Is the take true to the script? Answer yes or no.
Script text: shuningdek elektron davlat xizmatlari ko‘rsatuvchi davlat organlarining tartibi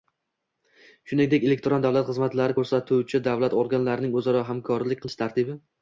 no